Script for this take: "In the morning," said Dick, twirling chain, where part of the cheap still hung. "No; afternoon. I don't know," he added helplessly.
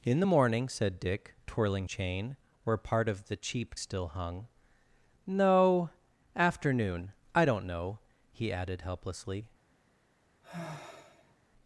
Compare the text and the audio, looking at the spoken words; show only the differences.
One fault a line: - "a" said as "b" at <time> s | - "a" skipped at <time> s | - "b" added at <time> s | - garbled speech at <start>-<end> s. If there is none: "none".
none